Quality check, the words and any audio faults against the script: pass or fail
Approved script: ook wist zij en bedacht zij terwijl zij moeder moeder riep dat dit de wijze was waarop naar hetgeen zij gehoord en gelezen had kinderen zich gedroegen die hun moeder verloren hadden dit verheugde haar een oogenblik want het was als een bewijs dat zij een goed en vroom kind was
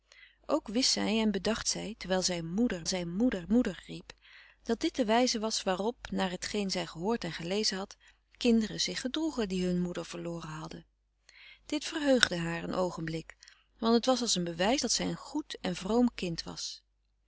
fail